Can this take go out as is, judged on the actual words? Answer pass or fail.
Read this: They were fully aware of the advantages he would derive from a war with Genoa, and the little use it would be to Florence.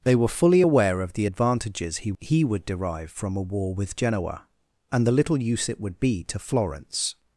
fail